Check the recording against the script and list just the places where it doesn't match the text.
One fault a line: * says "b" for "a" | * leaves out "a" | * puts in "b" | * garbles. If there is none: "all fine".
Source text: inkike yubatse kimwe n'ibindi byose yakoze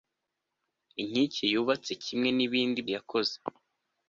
* leaves out "byose"